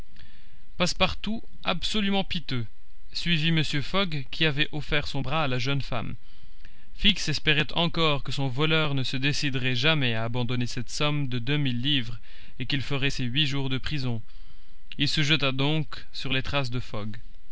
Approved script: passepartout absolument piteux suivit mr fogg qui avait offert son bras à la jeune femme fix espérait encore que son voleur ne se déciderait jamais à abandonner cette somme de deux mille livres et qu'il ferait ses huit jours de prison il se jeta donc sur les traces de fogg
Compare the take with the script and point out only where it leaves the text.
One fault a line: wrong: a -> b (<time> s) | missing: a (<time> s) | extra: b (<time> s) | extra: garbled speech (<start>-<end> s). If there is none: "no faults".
no faults